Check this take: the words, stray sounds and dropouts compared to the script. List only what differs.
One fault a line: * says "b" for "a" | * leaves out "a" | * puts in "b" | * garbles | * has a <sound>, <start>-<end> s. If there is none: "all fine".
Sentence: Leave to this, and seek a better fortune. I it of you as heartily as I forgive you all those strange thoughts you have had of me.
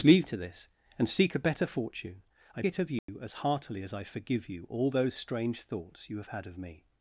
* has a dropout, 3.0-3.1 s